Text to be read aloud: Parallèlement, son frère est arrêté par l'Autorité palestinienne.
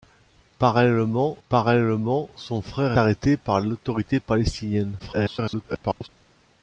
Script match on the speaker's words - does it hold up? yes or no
no